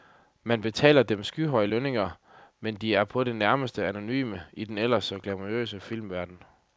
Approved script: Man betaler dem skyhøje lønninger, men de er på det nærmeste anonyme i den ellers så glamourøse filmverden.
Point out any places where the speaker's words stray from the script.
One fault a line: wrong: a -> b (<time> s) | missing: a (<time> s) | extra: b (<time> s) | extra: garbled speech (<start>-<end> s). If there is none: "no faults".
no faults